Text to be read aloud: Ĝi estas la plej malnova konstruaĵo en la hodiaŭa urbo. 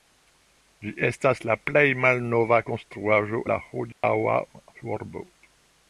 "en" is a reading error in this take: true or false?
true